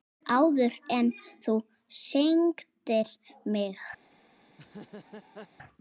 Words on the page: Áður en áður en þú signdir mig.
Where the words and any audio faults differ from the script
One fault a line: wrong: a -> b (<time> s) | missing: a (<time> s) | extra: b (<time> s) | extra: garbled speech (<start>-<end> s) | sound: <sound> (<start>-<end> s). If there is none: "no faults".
missing: áður en (1.1 s)
sound: laugh (4.5-5.5 s)